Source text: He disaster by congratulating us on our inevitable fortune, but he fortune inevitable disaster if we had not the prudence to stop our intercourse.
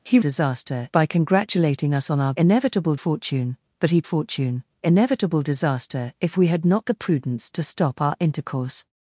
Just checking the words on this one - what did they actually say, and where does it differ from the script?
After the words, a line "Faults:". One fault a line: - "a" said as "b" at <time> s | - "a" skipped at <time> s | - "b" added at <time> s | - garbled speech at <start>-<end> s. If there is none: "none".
He disaster by congratulating us on our inevitable fortune, but he fortune inevitable disaster if we had not the prudence to stop our intercourse.
Faults:
none